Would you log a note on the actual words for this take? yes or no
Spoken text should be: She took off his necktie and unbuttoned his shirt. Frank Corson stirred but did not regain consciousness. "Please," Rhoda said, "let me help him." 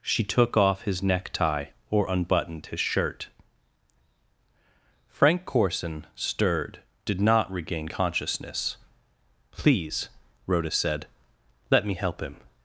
yes